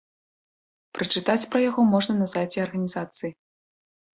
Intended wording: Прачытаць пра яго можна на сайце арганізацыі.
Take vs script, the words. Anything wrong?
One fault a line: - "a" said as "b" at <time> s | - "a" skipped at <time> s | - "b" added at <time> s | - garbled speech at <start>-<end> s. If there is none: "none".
none